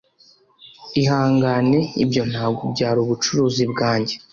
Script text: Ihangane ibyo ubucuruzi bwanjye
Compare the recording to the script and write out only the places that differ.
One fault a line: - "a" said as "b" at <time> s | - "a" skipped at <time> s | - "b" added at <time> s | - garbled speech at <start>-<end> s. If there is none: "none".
- "ntabwo byari" added at 2.3 s